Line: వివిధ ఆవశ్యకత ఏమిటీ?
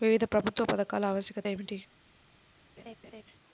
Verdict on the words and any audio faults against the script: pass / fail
fail